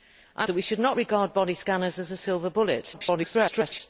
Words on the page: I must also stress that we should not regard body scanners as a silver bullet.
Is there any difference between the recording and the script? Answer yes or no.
yes